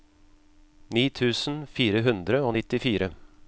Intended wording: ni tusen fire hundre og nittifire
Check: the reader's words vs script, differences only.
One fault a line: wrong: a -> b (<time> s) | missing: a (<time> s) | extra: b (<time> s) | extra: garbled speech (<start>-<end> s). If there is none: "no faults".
no faults